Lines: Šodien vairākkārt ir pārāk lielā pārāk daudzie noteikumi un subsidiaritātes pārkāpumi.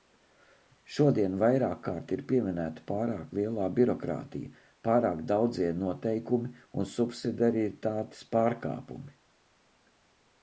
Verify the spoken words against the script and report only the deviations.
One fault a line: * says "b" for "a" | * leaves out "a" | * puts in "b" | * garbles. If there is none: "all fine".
* puts in "pieminēta"
* puts in "birokrātija"